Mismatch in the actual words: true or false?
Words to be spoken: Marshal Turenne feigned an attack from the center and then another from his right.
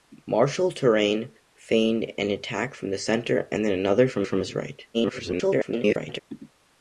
true